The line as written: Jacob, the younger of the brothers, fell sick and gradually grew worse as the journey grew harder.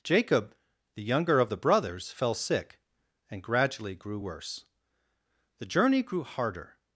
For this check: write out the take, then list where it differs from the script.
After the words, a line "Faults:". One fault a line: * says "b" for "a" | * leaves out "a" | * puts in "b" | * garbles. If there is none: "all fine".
Jacob, the younger of the brothers, fell sick and gradually grew worse the journey grew harder.
Faults:
* leaves out "as"